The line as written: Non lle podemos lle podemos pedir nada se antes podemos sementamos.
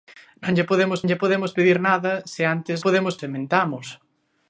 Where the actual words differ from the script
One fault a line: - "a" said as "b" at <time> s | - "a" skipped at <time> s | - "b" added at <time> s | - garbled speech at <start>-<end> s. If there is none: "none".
none